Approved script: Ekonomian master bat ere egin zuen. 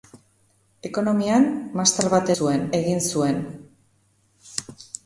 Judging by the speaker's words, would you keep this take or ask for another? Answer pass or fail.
fail